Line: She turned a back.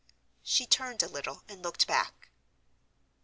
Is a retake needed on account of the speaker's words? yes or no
yes